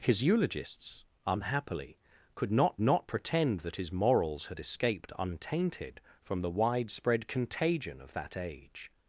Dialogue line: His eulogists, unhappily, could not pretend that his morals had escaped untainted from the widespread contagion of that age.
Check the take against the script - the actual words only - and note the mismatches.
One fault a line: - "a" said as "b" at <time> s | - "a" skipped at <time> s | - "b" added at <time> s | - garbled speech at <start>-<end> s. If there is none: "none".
- "not" added at 2.8 s